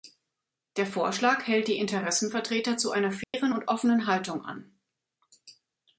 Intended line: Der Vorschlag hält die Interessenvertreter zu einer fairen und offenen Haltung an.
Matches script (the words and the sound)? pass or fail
fail